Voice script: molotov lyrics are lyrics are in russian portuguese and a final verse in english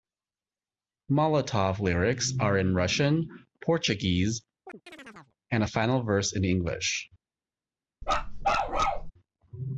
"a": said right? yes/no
yes